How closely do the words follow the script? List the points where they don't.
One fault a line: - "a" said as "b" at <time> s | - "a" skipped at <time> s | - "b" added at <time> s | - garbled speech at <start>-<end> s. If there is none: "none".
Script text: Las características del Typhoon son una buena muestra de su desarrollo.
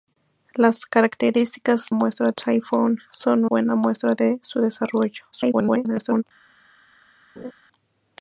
- "del" said as "muestra" at 1.9 s
- "una" skipped at 3.5 s
- garbled speech at 5.3-6.2 s